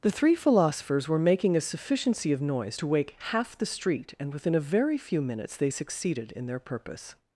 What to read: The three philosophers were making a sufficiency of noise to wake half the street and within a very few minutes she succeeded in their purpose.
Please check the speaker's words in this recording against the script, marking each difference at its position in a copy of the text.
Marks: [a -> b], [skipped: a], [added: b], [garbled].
The three philosophers were making a sufficiency of noise to wake half the street and within a very few minutes [she -> they] succeeded in their purpose.